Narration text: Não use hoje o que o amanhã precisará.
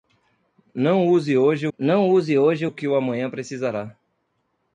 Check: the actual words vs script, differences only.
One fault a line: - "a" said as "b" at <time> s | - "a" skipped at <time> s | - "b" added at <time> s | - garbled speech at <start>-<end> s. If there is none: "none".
- "não use hoje" added at 1.8 s